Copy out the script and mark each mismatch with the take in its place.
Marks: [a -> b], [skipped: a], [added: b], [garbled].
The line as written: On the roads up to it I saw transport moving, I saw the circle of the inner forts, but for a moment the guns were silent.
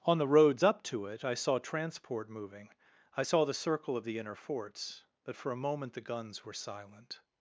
On the roads up to it I saw transport moving, I saw the circle of the inner forts, but for a moment the guns were silent.